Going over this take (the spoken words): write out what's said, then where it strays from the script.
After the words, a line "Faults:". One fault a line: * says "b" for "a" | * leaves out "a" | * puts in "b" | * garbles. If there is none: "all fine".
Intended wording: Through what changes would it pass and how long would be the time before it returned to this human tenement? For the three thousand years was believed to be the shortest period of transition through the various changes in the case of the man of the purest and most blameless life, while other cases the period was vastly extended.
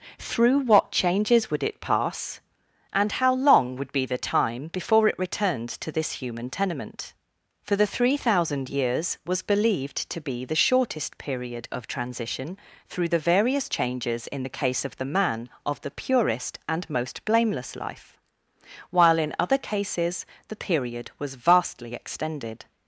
Through what changes would it pass and how long would be the time before it returned to this human tenement? For the three thousand years was believed to be the shortest period of transition through the various changes in the case of the man of the purest and most blameless life, while in other cases the period was vastly extended.
Faults:
* puts in "in"